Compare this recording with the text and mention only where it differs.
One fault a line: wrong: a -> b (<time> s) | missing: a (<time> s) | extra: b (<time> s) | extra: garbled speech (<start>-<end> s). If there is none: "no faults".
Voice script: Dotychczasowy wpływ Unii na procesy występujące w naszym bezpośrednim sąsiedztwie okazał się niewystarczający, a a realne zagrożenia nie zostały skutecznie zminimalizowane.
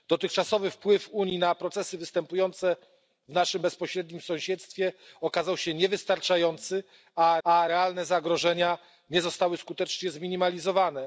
no faults